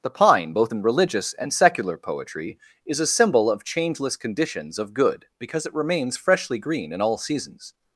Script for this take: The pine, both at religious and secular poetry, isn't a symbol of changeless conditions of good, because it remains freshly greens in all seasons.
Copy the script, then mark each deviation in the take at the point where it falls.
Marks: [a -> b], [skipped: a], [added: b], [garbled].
The pine, both [at -> in] religious and secular poetry, [isn't -> is] a symbol of changeless conditions of good, because it remains freshly [greens -> green] in all seasons.